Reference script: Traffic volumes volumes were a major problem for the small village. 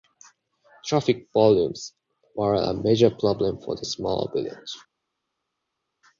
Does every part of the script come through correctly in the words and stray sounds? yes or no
no